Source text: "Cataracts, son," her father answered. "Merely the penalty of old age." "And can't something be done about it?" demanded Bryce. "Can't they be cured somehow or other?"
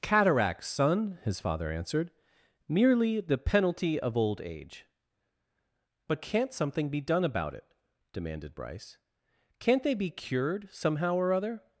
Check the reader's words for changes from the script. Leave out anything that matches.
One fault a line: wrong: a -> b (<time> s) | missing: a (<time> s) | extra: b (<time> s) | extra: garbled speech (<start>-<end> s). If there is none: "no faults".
wrong: her -> his (1.2 s)
wrong: And -> But (6.1 s)